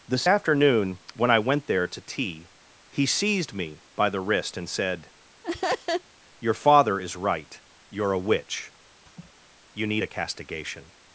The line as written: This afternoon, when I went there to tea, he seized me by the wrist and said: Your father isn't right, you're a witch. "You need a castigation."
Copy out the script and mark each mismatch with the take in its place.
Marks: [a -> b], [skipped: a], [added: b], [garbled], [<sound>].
This afternoon, when I went there to tea, he seized me by the wrist and said: [laugh] Your father [isn't -> is] right, you're a witch. [laugh] "You need a castigation."